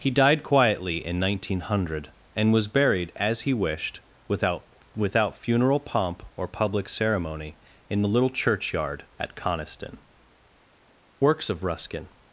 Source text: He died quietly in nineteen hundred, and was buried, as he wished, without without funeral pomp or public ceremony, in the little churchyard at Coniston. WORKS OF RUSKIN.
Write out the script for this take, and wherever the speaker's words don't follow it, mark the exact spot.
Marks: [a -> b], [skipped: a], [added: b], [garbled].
He died quietly in nineteen hundred, and was buried, as he wished, without without funeral pomp or public ceremony, in the little churchyard at Coniston. WORKS OF RUSKIN.